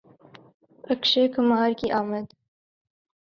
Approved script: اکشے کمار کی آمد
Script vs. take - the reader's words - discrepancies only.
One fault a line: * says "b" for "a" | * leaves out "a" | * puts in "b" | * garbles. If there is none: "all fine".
all fine